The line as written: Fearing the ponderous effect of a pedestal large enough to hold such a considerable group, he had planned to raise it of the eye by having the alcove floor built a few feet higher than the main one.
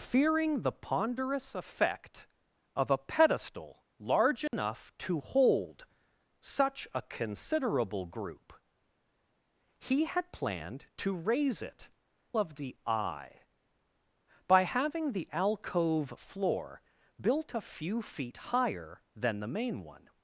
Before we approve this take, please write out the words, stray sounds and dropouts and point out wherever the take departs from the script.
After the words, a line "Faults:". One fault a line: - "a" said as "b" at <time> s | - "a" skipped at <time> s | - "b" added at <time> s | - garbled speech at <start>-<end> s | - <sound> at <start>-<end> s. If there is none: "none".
Fearing the ponderous effect of a pedestal large enough to hold such a considerable group, he had planned to raise it of the eye by having the alcove floor built a few feet higher than the main one.
Faults:
- dropout at 4.5-4.5 s